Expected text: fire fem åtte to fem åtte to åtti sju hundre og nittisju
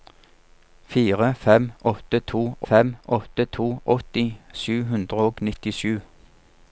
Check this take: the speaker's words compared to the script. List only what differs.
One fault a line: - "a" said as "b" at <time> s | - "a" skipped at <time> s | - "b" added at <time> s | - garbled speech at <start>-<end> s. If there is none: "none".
none